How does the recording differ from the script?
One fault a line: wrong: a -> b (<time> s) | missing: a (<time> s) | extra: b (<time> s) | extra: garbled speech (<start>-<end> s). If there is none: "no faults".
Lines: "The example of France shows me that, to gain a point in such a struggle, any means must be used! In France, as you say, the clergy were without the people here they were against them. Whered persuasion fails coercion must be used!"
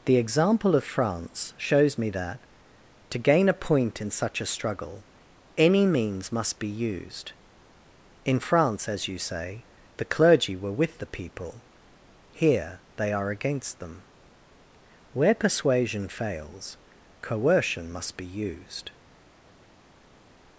wrong: without -> with (10.7 s)
wrong: were -> are (13.1 s)
wrong: Whered -> Where (15.1 s)